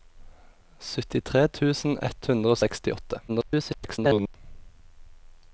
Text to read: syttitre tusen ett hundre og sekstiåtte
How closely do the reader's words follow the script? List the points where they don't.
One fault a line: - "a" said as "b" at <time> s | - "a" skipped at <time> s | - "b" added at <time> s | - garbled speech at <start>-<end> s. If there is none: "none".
- garbled speech at 3.3-4.4 s